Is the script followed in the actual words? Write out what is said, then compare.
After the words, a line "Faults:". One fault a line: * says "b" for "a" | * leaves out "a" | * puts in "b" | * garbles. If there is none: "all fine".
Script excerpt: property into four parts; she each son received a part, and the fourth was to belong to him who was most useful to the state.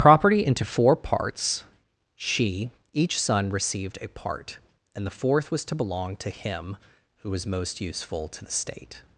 property into four parts; she each son received a part, and the fourth was to belong to him who was most useful to the state.
Faults:
all fine